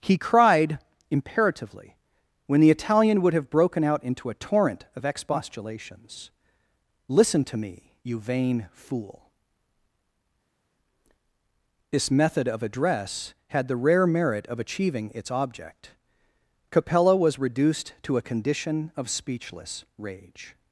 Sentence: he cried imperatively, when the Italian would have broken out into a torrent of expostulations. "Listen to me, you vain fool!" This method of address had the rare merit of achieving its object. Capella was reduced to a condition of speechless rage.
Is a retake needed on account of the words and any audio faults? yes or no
no